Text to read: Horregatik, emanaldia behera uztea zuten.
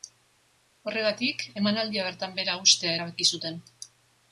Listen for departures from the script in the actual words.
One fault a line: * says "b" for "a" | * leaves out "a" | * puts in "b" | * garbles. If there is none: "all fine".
* puts in "bertan"
* puts in "erabaki"